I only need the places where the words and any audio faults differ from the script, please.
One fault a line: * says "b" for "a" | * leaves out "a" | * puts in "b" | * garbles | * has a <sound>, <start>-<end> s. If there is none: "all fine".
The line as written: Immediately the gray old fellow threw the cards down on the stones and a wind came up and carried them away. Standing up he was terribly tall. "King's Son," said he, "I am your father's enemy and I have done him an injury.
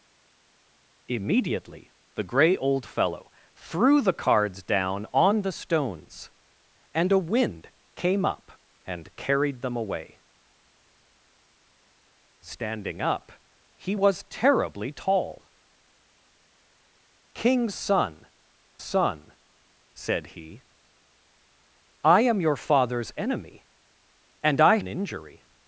* puts in "Son"
* leaves out "have done him"